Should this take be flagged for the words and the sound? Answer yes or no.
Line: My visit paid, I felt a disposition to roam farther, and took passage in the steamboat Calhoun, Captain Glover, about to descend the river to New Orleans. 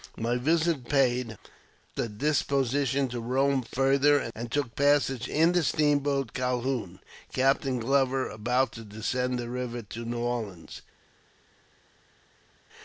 yes